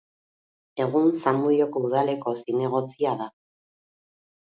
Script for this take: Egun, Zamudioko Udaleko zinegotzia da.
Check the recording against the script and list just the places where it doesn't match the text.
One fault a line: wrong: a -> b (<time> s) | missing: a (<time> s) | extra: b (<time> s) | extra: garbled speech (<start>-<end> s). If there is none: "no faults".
no faults